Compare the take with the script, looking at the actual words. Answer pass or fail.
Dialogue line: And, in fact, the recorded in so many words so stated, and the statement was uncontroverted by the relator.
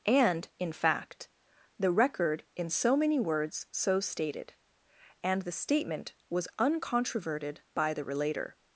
fail